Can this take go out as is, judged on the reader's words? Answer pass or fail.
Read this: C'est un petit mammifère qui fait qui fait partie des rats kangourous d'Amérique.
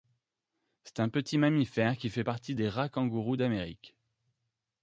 fail